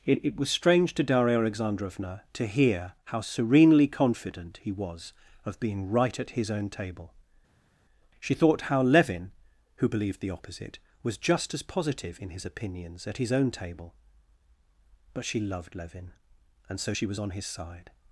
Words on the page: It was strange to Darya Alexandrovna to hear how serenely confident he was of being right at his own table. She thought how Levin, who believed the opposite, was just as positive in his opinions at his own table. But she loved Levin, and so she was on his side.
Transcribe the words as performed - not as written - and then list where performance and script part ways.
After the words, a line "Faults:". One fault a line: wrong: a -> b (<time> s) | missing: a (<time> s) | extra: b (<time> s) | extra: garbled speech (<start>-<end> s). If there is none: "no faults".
It it was strange to Darya Alexandrovna to hear how serenely confident he was of being right at his own table. She thought how Levin, who believed the opposite, was just as positive in his opinions at his own table. But she loved Levin, and so she was on his side.
Faults:
extra: it (0.2 s)